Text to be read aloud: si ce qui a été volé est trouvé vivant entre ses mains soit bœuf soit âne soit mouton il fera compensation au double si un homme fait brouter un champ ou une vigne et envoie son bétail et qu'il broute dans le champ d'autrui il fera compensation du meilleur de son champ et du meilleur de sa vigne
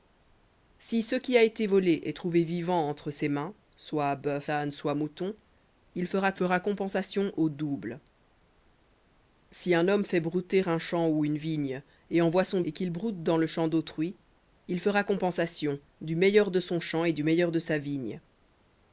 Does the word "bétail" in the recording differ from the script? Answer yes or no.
yes